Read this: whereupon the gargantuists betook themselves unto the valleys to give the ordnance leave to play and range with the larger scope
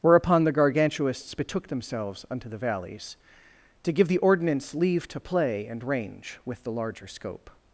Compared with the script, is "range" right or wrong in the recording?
right